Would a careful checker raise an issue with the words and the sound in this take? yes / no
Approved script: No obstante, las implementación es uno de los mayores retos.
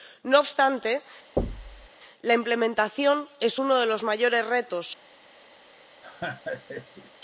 yes